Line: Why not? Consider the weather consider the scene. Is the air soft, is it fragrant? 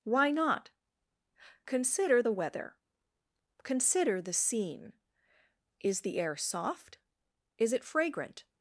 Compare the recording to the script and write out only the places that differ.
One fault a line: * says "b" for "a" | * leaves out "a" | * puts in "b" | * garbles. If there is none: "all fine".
all fine